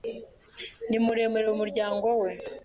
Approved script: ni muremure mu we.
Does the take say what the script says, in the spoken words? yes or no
no